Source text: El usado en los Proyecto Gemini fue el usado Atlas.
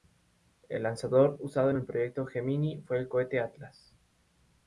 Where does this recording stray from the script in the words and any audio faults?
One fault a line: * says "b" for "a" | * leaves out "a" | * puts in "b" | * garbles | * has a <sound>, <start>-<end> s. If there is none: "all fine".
* puts in "lanzador"
* says "el" for "los"
* says "cohete" for "usado"